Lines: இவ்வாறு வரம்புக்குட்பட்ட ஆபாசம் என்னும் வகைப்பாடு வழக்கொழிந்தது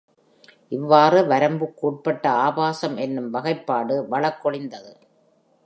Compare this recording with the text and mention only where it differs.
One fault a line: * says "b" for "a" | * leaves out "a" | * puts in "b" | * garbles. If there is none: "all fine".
all fine